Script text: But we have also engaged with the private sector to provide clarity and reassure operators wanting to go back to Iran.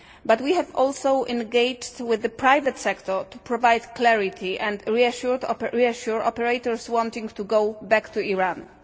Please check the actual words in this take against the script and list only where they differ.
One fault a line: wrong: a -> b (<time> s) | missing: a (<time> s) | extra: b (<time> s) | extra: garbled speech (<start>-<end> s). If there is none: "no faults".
no faults